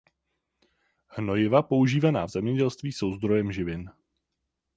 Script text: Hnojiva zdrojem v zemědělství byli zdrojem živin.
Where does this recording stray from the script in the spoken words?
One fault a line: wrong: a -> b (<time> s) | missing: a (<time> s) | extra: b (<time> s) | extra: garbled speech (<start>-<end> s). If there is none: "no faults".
wrong: zdrojem -> používaná (1.6 s)
wrong: byli -> jsou (2.9 s)